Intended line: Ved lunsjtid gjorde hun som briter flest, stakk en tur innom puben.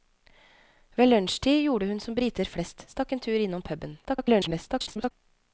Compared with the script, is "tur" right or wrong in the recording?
right